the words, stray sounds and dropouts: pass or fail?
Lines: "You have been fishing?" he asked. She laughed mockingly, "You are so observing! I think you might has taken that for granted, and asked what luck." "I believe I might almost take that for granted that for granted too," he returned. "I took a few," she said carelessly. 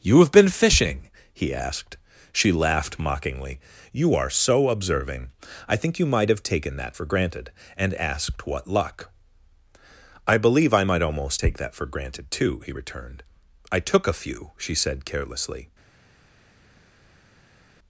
fail